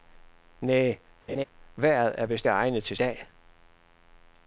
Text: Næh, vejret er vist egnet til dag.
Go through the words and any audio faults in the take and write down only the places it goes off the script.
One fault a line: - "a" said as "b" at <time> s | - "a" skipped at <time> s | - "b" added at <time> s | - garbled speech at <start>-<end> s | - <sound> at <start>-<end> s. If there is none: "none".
- laugh at 1.3-1.4 s